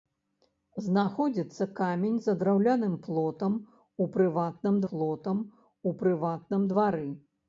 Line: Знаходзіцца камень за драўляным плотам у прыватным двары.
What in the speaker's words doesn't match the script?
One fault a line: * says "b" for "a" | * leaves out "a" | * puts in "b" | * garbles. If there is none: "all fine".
* puts in "плотам у прыватным"